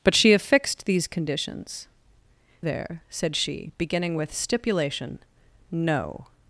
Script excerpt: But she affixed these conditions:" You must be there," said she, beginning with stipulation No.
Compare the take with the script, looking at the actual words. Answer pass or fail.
fail